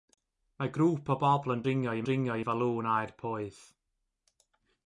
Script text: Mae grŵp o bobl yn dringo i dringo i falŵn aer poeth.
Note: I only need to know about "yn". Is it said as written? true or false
true